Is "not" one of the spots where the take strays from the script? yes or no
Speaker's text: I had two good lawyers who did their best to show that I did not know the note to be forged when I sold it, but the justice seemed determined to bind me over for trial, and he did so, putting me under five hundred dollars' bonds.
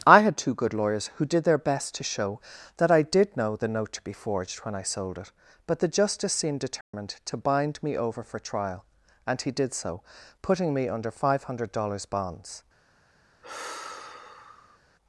yes